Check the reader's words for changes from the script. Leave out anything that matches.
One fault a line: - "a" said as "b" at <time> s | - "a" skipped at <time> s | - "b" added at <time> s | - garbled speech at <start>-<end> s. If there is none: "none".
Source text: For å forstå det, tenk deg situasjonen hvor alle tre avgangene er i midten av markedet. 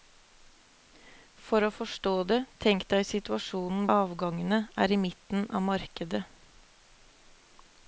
- "hvor alle tre" skipped at 3.9 s